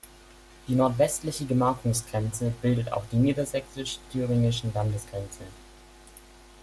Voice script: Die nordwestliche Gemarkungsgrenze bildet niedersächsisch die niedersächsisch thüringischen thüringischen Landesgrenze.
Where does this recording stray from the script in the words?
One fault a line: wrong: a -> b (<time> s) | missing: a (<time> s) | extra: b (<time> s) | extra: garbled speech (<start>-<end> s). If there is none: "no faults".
wrong: niedersächsisch -> auch (2.9 s)
missing: thüringischen (4.7 s)